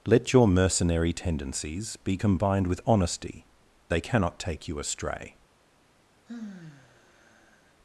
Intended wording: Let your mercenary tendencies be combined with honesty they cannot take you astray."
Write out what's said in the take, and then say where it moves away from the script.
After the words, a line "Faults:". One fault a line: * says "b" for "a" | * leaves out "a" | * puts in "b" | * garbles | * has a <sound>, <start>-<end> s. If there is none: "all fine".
Let your mercenary tendencies be combined with honesty they cannot take you astray."
Faults:
* has a sigh, 6.3-7.7 s